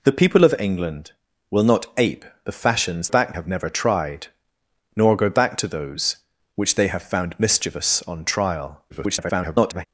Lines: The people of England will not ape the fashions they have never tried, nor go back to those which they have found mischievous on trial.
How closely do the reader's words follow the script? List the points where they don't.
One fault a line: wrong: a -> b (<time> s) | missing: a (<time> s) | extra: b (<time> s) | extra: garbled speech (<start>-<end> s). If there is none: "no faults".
wrong: they -> back (3.1 s)
extra: garbled speech (8.9-9.9 s)